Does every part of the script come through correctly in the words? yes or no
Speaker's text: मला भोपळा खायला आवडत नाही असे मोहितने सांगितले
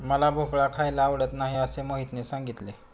yes